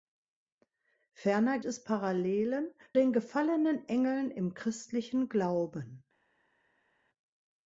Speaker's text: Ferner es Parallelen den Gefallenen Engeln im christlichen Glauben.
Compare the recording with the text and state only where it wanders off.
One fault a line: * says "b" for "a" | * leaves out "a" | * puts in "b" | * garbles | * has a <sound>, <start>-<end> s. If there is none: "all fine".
all fine